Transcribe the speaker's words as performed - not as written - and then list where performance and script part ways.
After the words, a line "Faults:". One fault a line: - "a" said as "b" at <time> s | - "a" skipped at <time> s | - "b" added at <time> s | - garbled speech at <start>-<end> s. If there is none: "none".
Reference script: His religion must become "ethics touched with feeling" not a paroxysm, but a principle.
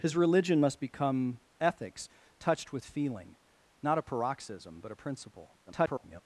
His religion must become "ethics touched with feeling" not a paroxysm, but a principle. [garbled]
Faults:
- garbled speech at 5.7-6.2 s